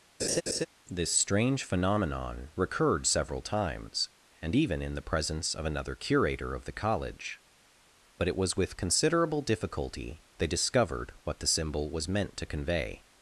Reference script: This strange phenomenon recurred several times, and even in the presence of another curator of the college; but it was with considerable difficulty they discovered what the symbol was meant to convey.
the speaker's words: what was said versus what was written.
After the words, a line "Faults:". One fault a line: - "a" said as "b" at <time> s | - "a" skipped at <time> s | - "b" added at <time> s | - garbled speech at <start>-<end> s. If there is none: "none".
This strange phenomenon recurred several times, and even in the presence of another curator of the college; but it was with considerable difficulty they discovered what the symbol was meant to convey.
Faults:
none